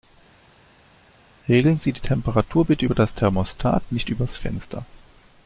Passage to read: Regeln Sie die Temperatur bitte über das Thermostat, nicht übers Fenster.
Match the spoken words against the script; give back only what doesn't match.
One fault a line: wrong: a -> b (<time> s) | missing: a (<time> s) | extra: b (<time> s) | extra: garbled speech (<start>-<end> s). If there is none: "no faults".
no faults